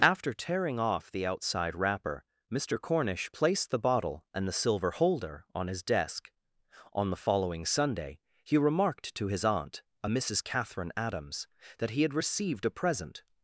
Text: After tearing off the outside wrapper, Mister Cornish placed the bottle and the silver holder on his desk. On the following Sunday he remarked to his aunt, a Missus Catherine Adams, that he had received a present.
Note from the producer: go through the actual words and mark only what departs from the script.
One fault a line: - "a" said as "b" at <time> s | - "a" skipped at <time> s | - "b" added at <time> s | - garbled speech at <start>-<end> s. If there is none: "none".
none